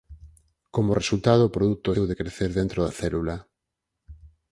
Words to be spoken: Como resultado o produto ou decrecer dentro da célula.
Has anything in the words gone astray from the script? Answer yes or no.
no